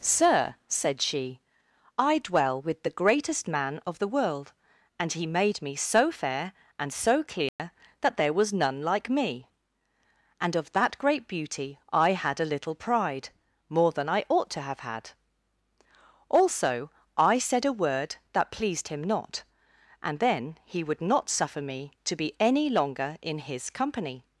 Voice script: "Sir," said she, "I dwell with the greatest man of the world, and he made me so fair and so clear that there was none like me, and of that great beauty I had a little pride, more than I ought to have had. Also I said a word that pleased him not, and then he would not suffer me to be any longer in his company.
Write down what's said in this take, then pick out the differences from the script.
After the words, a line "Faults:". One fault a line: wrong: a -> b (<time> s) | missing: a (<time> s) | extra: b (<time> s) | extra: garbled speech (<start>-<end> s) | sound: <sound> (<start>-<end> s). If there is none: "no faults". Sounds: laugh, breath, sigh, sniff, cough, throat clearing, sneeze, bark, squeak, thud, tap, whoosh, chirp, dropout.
"Sir," said she, "I dwell with the greatest man of the world, and he made me so fair and so clear that there was none like me, and of that great beauty I had a little pride, more than I ought to have had. Also I said a word that pleased him not, and then he would not suffer me to be any longer in his company.
Faults:
sound: dropout (7.5-7.6 s)